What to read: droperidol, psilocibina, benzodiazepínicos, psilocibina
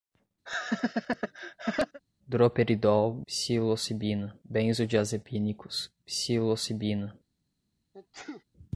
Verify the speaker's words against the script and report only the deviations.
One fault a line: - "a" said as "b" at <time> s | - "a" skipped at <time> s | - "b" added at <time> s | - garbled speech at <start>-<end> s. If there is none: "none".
none